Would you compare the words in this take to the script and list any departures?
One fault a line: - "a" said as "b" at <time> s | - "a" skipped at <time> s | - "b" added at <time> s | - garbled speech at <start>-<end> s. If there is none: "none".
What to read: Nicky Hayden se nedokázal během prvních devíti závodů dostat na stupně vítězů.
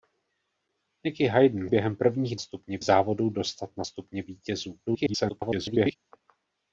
- "se nedokázal" skipped at 1.7 s
- "devíti" said as "stupně" at 2.4 s
- garbled speech at 4.9-6.0 s